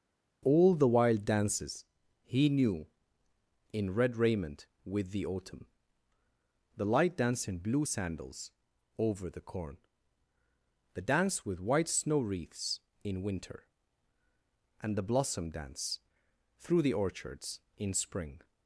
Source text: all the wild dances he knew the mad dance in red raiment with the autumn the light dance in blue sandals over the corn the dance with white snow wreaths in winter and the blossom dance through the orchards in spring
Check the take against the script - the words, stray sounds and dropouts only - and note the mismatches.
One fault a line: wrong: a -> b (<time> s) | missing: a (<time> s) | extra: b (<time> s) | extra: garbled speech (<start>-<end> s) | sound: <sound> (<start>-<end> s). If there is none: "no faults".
missing: the mad dance (2.9 s)